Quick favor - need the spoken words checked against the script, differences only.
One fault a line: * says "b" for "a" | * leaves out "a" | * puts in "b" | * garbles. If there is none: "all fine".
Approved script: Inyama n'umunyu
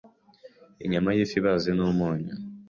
* puts in "y'ifi ibaze"